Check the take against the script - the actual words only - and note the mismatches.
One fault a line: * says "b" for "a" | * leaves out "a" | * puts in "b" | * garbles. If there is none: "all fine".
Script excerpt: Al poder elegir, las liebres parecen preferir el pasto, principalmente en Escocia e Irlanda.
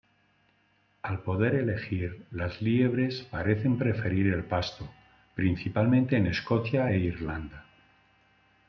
all fine